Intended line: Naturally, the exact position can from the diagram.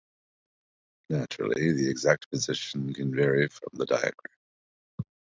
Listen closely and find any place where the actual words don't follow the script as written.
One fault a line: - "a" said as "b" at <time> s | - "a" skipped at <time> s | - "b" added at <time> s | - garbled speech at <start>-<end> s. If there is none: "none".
- "vary" added at 3.1 s